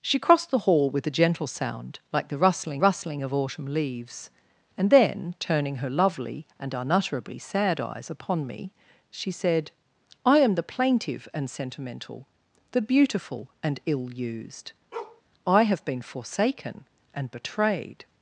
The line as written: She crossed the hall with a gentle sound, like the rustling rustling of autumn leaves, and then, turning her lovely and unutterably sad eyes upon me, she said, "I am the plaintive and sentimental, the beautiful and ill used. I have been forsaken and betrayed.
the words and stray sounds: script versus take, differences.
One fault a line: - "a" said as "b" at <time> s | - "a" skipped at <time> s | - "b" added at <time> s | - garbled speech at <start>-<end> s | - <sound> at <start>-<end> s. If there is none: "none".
- bark at 14.9-15.2 s